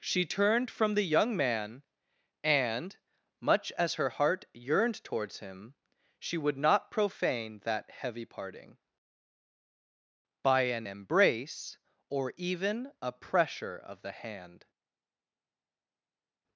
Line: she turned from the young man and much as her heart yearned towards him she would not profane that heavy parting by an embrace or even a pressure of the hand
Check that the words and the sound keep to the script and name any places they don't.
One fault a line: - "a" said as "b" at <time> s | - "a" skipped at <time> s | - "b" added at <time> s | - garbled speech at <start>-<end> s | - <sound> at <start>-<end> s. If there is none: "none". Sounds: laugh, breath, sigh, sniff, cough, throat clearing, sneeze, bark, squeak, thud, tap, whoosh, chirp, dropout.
none